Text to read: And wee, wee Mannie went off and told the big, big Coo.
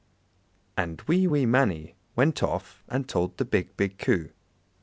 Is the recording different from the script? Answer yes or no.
no